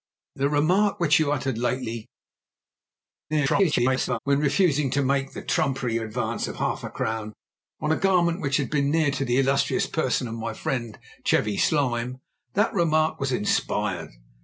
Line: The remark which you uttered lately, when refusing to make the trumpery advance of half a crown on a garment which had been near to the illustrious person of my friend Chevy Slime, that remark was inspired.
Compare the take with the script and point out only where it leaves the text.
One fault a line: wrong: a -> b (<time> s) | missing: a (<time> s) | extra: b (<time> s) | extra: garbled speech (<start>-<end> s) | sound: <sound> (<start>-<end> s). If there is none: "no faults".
extra: garbled speech (3.3-4.2 s)